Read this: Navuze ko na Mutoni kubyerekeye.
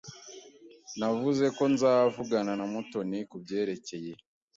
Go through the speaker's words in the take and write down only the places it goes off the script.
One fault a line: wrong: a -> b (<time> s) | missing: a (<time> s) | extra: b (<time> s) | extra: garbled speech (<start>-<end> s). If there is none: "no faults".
extra: nzavugana (1.7 s)